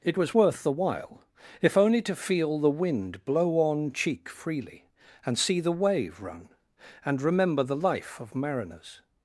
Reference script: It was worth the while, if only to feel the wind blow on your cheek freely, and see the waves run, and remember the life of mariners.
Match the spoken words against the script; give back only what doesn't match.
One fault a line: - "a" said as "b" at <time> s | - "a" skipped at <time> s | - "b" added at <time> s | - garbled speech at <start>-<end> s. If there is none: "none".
- "your" skipped at 3.9 s
- "waves" said as "wave" at 5.7 s